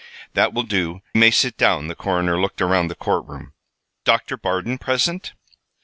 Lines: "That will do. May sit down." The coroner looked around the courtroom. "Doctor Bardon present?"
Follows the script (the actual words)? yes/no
yes